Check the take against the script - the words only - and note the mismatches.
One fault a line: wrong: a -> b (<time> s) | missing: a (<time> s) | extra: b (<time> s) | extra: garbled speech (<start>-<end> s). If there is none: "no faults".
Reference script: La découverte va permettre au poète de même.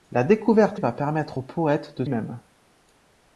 no faults